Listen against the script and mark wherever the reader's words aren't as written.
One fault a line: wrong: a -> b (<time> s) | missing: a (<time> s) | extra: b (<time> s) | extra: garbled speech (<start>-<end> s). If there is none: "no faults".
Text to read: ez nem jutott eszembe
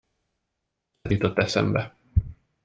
missing: nem (1.1 s)